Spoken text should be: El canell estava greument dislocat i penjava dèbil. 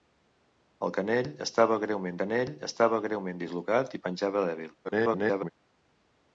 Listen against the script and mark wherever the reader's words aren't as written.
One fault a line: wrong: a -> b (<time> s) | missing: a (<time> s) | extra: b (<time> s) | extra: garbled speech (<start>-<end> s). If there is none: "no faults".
extra: canell estava greument (2.2 s)
extra: garbled speech (4.8-5.5 s)